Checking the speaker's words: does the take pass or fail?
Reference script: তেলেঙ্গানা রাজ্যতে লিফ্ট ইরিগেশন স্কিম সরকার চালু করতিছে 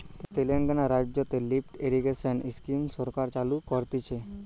pass